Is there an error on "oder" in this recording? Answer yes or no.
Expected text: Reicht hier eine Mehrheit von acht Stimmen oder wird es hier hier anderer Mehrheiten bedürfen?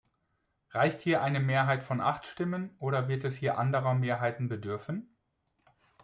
no